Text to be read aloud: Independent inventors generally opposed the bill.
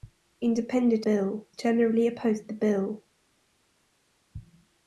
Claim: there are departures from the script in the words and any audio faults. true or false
true